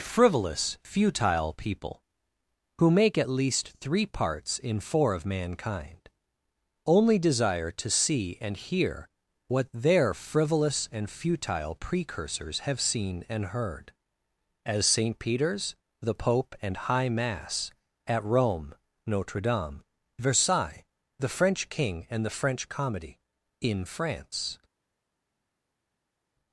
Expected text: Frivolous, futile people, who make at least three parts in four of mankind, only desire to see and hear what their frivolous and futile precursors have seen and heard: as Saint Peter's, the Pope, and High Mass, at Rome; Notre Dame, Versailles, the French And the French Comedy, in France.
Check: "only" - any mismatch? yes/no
no